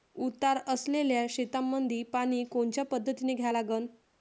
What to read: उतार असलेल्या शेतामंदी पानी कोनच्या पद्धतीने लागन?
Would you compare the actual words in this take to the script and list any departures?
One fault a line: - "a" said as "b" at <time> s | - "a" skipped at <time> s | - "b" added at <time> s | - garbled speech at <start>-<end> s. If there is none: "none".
- "द्या" added at 3.4 s